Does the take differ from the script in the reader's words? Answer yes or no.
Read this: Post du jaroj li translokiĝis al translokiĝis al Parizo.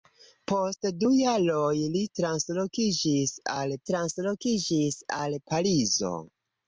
no